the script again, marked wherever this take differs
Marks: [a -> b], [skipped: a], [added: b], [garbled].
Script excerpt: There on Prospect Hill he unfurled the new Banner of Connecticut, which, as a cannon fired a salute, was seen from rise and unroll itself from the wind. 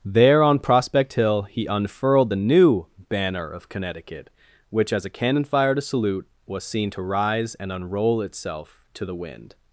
There on Prospect Hill he unfurled the new Banner of Connecticut, which, as a cannon fired a salute, was seen [from -> to] rise and unroll itself [from -> to] the wind.